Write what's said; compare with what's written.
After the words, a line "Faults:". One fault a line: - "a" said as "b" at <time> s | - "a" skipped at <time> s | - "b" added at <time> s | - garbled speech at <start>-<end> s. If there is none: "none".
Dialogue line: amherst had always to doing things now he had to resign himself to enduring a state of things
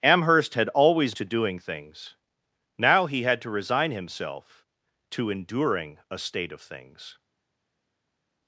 amherst had always to doing things now he had to resign himself to enduring a state of things
Faults:
none